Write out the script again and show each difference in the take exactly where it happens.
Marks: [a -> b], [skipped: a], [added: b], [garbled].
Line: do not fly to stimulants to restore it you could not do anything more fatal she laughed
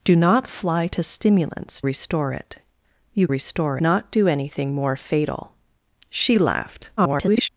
do not fly to stimulants [skipped: to] restore it you [could -> restore] not do anything more fatal she laughed [garbled]